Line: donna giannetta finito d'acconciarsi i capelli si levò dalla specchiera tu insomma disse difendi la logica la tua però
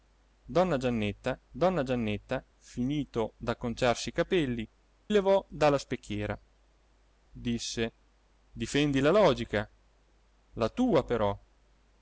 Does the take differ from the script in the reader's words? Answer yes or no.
yes